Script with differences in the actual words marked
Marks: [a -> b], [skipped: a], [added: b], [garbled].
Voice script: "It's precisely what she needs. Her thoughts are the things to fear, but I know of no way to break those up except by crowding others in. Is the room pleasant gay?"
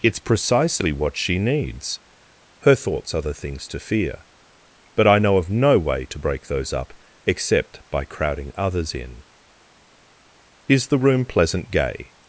"It's precisely what she needs. Her thoughts are the things to fear, but I know of no way to break those up except by crowding others in. Is the room pleasant gay?"